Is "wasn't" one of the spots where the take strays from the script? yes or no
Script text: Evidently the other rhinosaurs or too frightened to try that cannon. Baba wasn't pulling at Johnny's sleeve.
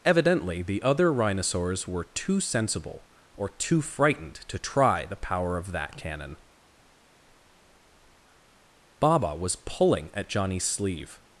yes